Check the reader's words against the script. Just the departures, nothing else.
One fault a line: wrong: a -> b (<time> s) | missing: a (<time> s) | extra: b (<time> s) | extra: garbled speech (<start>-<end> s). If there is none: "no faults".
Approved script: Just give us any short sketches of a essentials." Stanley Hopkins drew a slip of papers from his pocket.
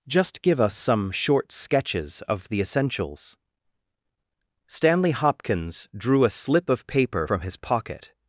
wrong: any -> some (0.8 s)
wrong: a -> the (2.5 s)
wrong: papers -> paper (6.9 s)